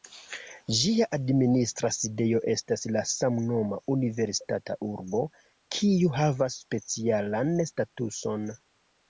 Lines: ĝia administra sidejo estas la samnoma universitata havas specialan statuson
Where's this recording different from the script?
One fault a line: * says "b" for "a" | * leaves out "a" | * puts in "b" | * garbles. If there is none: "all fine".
* puts in "urbo kiu"